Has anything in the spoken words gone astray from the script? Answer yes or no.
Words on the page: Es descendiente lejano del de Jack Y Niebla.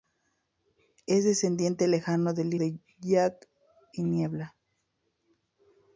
no